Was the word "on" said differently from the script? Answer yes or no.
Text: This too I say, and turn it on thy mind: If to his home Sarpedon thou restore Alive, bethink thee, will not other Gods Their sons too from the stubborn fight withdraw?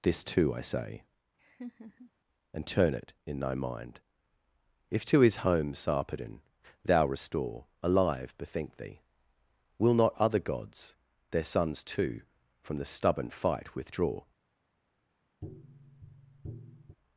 yes